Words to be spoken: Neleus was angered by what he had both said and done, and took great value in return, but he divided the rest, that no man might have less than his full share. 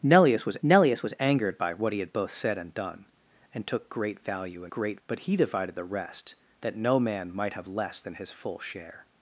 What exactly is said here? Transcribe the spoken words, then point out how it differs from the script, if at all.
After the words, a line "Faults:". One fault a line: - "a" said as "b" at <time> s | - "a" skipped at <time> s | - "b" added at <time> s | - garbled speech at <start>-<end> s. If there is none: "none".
Neleus was neleus was angered by what he had both said and done, and took great value in great, but he divided the rest, that no man might have less than his full share.
Faults:
- "neleus was" added at 0.6 s
- "return" said as "great" at 4.7 s